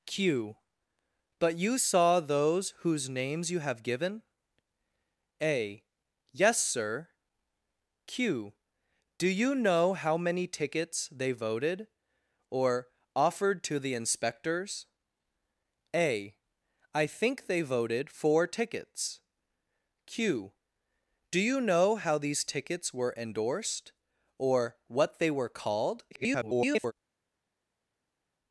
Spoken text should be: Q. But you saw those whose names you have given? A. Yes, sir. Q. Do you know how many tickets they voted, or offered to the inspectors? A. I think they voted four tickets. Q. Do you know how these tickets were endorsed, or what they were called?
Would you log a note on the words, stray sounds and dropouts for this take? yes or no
yes